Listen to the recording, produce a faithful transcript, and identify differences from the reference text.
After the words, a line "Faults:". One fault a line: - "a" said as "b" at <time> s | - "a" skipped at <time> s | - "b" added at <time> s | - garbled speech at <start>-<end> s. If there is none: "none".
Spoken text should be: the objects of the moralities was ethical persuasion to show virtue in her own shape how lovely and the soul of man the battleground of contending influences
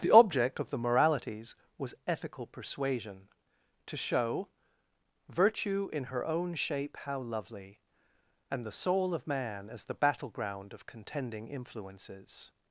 the object of the moralities was ethical persuasion to show virtue in her own shape how lovely and the soul of man as the battleground of contending influences
Faults:
- "objects" said as "object" at 0.1 s
- "as" added at 9.7 s